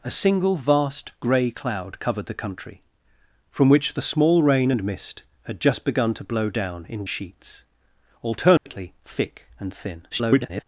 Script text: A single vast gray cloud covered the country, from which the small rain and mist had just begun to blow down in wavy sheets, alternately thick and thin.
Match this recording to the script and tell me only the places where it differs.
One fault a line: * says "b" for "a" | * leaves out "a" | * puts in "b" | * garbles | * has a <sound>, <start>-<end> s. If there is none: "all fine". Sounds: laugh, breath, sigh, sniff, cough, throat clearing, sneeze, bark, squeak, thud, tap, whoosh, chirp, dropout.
* leaves out "wavy"
* has a dropout, 8.6-8.7 s
* garbles